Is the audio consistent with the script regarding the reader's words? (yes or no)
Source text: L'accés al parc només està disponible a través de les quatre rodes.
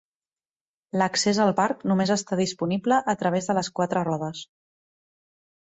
yes